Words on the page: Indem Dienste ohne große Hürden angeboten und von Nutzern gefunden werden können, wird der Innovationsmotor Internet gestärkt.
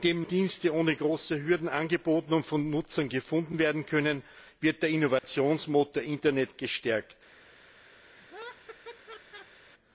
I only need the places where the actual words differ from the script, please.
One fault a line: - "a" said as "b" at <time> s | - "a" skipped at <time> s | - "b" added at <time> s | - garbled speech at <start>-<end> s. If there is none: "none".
none